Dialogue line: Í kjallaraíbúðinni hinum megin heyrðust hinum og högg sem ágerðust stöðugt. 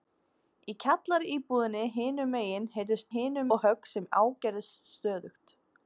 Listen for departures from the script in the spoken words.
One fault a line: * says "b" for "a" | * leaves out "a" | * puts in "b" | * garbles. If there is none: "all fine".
all fine